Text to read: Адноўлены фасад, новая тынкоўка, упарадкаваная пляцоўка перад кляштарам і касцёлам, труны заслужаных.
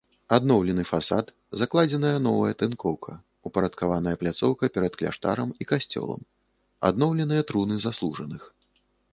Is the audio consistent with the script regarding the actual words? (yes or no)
no